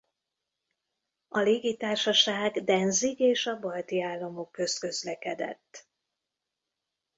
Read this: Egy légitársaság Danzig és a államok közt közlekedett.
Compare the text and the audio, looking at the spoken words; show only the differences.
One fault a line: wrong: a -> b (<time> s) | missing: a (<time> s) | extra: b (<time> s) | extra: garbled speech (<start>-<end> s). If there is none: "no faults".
wrong: Egy -> A (1.3 s)
extra: balti (3.6 s)